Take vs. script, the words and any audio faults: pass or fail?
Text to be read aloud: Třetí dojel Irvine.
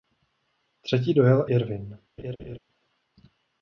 fail